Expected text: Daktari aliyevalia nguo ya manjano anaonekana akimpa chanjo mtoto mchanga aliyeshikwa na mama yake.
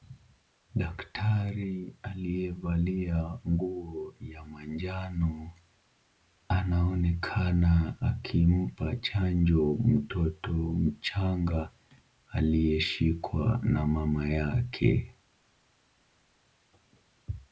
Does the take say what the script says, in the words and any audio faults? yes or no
yes